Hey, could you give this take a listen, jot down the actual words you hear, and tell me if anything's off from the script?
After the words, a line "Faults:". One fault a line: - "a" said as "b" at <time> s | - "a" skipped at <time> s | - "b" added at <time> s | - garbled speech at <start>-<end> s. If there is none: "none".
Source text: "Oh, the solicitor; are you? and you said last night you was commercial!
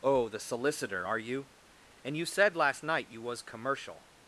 "Oh, the solicitor; are you? and you said last night you was commercial!
Faults:
none